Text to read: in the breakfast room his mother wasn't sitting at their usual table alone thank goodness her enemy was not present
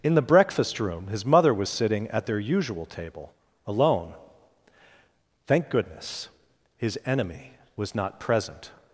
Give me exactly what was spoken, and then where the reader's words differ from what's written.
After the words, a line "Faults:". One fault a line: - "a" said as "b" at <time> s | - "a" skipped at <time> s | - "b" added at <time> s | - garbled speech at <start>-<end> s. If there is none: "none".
in the breakfast room his mother was sitting at their usual table alone thank goodness his enemy was not present
Faults:
- "wasn't" said as "was" at 1.5 s
- "her" said as "his" at 6.8 s